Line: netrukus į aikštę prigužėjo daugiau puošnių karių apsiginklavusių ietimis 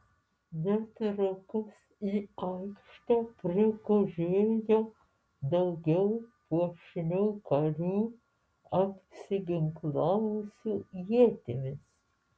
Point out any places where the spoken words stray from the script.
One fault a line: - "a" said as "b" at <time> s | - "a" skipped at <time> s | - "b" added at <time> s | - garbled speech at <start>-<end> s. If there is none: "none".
none